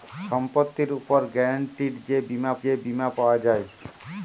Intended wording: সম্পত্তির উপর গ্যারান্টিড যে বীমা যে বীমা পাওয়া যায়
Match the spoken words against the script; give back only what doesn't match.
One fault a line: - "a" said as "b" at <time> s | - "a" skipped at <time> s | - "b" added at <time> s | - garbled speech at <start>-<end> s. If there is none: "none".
none